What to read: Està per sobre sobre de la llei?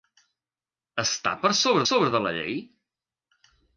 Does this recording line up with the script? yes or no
yes